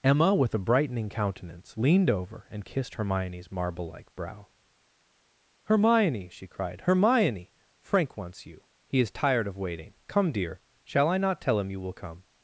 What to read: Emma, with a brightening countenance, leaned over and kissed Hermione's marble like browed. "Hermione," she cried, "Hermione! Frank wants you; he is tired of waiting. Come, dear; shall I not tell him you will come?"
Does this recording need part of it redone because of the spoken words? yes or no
yes